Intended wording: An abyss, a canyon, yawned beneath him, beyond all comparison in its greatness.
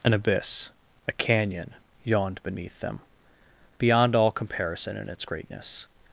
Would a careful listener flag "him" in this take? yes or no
yes